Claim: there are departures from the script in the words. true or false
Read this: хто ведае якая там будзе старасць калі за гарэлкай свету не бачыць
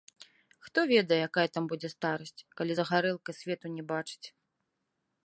false